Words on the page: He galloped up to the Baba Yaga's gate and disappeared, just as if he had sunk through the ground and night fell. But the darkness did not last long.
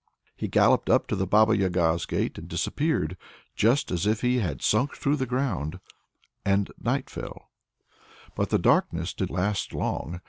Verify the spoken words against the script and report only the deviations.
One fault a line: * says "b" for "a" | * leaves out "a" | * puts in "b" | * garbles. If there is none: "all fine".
* leaves out "not"